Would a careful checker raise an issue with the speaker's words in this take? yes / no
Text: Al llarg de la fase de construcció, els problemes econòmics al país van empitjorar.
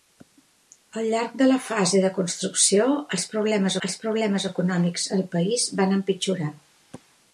yes